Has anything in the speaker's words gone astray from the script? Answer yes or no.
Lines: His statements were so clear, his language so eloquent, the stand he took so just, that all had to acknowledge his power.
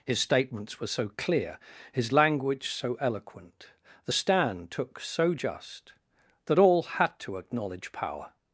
yes